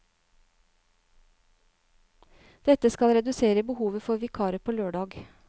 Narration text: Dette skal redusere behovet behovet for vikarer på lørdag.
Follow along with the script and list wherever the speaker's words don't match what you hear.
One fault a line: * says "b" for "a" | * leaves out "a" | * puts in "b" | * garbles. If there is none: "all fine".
* leaves out "behovet"